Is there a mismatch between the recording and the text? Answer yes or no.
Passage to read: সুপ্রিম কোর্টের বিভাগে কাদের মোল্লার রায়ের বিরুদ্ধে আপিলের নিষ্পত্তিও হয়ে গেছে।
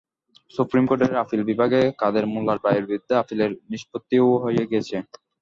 yes